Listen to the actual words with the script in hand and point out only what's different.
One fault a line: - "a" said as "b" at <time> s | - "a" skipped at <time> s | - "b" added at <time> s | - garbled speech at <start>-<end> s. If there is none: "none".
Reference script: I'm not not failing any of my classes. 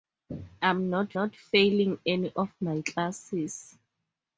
none